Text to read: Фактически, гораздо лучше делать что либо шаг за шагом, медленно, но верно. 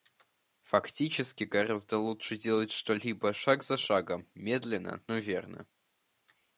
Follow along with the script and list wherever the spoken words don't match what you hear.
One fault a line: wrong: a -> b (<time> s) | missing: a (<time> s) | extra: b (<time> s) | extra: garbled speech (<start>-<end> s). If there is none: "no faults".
no faults